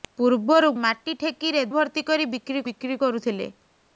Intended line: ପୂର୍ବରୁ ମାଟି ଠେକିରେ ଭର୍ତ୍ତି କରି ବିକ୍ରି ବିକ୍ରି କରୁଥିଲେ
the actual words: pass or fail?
pass